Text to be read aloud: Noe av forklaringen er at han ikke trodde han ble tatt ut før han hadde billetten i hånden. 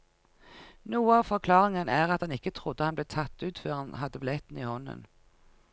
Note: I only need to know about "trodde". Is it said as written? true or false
true